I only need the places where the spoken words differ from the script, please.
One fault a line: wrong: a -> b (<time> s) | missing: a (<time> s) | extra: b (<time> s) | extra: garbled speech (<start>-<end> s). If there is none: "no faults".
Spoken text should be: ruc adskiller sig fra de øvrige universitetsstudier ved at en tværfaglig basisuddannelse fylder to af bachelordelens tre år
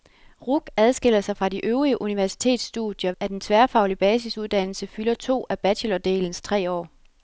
missing: ved (3.1 s)